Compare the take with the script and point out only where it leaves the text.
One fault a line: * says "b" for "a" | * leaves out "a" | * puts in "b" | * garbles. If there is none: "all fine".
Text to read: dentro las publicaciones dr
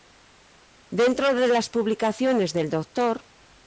* puts in "de"
* puts in "del"